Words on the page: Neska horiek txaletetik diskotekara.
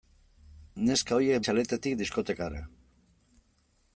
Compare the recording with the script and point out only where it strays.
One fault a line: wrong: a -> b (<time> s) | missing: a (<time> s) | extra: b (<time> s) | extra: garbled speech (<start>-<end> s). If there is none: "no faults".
no faults